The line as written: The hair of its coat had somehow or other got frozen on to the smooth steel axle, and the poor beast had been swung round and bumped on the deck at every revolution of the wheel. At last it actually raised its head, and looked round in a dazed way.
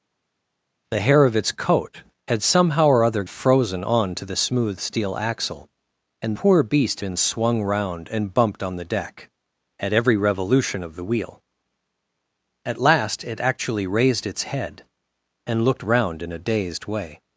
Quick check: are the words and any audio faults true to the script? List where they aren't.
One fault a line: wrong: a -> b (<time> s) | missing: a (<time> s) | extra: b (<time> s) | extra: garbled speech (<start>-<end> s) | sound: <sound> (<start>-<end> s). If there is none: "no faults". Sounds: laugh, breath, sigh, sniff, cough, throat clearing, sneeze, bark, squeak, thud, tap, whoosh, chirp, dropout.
missing: got (3.2 s)
missing: the (6.4 s)
missing: had (7.0 s)